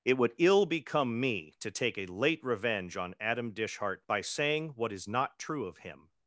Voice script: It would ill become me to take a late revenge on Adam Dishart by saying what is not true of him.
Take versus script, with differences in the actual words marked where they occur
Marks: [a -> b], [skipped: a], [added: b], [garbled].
It would ill become me to take a late revenge on Adam Dishart by saying what is not true of him.